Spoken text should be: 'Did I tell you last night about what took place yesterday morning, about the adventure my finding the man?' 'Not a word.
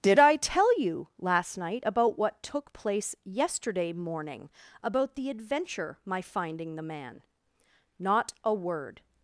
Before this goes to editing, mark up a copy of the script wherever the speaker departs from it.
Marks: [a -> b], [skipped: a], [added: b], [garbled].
'Did I tell you last night about what took place yesterday morning, about the adventure my finding the man?' 'Not a word.